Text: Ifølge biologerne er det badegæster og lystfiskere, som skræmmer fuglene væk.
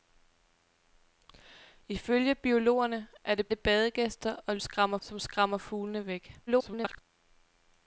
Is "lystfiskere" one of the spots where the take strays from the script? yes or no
yes